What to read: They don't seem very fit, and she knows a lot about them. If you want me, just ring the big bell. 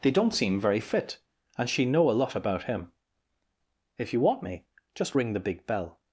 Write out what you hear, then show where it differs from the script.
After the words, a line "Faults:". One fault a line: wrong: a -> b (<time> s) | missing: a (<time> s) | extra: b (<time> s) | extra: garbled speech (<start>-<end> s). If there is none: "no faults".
They don't seem very fit, and she know a lot about him. If you want me, just ring the big bell.
Faults:
wrong: knows -> know (1.9 s)
wrong: them -> him (2.6 s)